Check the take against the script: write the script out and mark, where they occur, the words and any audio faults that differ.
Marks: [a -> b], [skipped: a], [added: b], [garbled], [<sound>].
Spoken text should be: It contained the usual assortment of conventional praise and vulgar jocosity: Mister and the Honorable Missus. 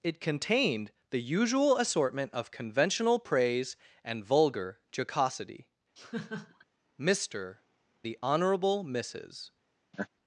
It contained the usual assortment of conventional praise and vulgar jocosity: [laugh] Mister [skipped: and] the Honorable Missus. [laugh]